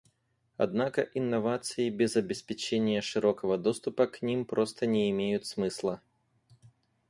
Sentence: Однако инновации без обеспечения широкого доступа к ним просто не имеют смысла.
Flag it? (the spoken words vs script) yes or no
no